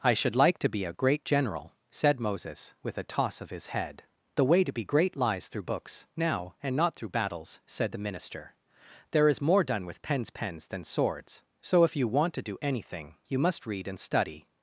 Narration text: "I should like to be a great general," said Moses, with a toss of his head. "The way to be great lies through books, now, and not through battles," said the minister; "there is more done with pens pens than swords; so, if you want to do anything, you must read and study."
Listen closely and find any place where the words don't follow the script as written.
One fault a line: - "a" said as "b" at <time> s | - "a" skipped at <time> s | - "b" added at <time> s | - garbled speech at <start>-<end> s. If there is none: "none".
none